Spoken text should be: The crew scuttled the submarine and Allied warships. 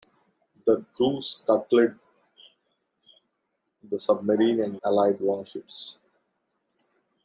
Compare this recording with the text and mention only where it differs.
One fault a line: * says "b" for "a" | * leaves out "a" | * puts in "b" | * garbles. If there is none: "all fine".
all fine